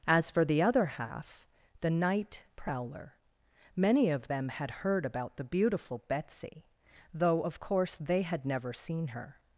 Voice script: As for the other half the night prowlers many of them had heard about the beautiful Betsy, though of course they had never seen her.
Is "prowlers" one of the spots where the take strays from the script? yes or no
yes